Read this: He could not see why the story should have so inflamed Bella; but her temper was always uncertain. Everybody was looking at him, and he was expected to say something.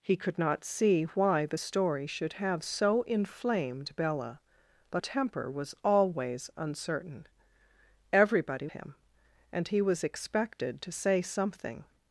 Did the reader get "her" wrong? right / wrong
wrong